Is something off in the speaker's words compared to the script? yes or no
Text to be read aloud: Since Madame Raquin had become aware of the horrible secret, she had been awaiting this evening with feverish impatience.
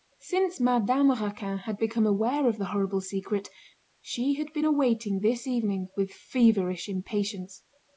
no